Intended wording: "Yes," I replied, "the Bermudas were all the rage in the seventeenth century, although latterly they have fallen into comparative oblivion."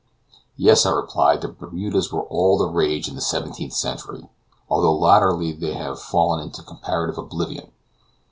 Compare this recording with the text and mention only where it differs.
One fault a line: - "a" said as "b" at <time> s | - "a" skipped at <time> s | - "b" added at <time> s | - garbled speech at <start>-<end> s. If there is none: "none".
none